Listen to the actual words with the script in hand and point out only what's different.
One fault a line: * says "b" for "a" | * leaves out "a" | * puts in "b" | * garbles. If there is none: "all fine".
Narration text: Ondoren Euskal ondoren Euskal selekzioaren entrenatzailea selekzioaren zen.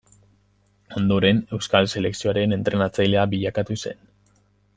* leaves out "ondoren Euskal"
* says "bilakatu" for "selekzioaren"